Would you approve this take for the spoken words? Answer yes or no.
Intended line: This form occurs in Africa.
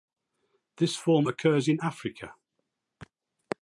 yes